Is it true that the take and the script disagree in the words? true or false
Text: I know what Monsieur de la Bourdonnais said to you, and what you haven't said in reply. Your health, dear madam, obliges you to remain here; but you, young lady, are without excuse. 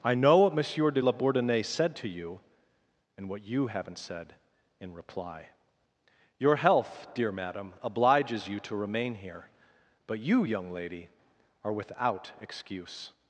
false